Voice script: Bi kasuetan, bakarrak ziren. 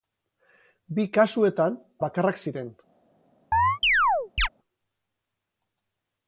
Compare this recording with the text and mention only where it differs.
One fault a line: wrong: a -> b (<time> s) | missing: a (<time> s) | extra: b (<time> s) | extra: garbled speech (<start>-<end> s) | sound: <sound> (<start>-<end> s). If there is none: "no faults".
sound: chirp (3.5-4.5 s)